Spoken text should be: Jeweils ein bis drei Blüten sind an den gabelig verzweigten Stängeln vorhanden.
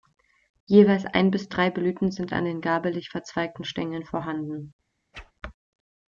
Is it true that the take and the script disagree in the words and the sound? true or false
true